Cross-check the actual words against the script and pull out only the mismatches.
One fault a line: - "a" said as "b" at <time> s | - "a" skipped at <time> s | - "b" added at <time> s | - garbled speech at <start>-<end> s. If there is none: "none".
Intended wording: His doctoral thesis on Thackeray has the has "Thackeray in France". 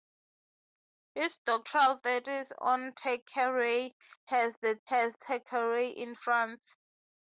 none